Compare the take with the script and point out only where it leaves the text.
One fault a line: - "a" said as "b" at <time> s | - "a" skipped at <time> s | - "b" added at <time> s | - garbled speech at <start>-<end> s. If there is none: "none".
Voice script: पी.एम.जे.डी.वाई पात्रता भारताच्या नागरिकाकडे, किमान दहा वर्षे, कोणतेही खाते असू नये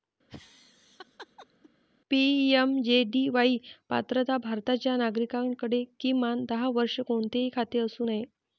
none